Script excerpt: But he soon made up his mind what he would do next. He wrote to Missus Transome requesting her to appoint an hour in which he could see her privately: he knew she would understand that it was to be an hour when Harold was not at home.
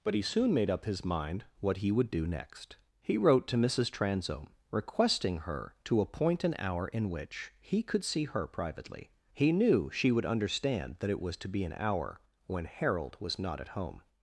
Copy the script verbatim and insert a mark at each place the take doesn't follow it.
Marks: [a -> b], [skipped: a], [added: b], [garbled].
But he soon made up his mind what he would do next. He wrote to Missus Transome requesting her to appoint an hour in which he could see her privately: he knew she would understand that it was to be an hour when Harold was not at home.